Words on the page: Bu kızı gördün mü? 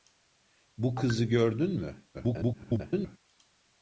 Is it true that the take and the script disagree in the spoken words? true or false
true